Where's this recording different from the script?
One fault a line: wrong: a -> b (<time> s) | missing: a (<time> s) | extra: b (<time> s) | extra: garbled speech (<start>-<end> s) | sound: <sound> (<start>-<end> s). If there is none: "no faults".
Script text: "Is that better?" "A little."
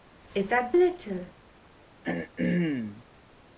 missing: better A (0.7 s)
sound: throat clearing (2.0-3.0 s)